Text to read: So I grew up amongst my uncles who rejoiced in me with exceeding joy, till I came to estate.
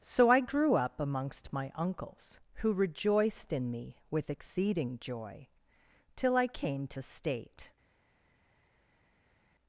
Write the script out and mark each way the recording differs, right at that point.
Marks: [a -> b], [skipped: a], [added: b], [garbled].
So I grew up amongst my uncles who rejoiced in me with exceeding joy, till I came to estate.